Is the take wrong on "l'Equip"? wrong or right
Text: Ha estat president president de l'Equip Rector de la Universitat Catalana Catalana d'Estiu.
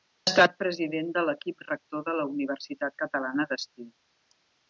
right